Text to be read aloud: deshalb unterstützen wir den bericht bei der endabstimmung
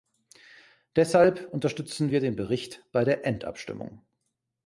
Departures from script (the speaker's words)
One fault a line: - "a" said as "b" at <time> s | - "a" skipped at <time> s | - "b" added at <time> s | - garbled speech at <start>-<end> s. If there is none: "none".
none